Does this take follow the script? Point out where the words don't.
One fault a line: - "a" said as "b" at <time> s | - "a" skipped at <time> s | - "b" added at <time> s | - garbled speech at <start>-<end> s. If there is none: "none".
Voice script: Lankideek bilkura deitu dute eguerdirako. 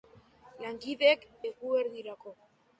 - "bilkura deitu dute" skipped at 1.3 s